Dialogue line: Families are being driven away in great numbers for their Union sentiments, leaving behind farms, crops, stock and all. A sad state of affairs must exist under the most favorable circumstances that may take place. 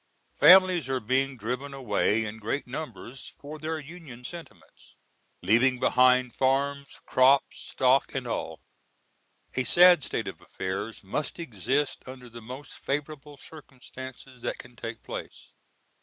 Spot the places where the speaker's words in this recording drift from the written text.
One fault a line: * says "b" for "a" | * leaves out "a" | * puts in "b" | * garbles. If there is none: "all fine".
* says "can" for "may"